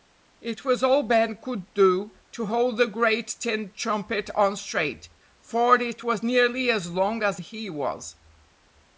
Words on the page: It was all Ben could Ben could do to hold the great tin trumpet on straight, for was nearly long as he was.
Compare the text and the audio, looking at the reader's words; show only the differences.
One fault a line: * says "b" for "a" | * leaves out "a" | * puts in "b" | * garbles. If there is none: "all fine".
* leaves out "Ben could"
* puts in "it"
* puts in "as"